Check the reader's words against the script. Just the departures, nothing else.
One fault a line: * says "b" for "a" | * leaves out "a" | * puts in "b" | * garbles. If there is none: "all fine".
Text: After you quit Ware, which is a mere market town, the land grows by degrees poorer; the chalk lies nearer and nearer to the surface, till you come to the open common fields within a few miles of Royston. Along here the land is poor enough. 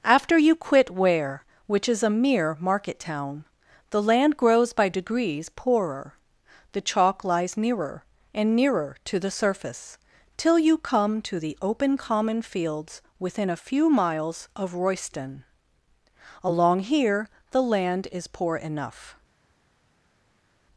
all fine